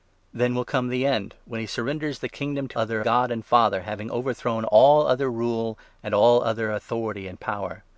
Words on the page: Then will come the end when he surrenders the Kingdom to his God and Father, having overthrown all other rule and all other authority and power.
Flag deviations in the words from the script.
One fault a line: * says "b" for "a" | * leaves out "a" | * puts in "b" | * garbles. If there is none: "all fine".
* says "other" for "his"